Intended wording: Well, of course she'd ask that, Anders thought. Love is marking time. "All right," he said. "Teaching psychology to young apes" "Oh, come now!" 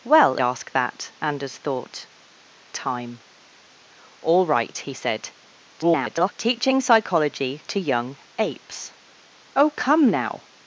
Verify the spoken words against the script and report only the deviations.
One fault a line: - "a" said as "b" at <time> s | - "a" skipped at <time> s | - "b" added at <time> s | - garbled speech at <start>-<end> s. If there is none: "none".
- "of course she'd" skipped at 0.3 s
- "Love is marking" skipped at 2.1 s
- garbled speech at 5.7-6.3 s